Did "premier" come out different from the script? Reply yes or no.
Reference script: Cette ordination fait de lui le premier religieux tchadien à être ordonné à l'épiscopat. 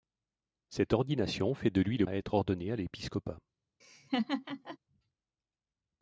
yes